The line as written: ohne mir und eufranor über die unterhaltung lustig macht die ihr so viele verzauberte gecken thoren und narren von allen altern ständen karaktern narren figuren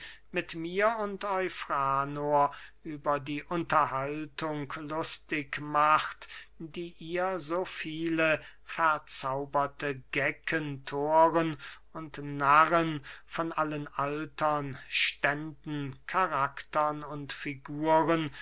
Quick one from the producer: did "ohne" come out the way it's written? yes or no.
no